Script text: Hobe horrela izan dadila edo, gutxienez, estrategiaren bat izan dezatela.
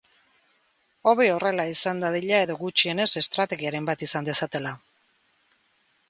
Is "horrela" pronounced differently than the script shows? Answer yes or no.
no